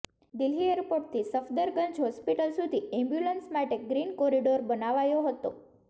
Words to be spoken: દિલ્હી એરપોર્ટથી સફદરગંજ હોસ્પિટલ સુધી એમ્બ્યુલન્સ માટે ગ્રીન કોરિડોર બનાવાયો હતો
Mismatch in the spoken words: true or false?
false